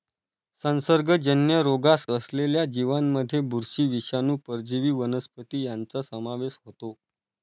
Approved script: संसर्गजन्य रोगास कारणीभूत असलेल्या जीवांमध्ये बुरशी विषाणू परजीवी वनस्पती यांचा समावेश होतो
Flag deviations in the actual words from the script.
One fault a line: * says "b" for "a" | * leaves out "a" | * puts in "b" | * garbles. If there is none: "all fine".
* leaves out "कारणीभूत"